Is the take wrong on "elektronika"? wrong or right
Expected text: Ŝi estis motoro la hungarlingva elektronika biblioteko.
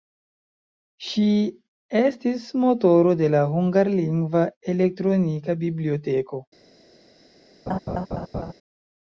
right